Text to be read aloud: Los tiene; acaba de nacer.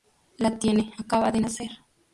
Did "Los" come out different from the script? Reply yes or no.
yes